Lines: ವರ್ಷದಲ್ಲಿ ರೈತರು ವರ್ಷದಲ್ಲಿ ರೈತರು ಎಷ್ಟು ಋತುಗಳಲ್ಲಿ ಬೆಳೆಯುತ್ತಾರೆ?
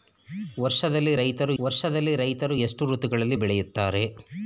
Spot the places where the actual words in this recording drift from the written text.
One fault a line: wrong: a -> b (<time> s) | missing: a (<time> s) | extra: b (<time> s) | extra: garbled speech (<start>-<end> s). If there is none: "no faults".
no faults